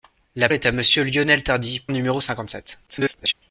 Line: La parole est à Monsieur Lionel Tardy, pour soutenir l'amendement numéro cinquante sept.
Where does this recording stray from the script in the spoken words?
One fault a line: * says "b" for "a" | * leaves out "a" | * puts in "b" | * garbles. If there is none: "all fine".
* leaves out "parole"
* leaves out "pour soutenir l'amendement"
* garbles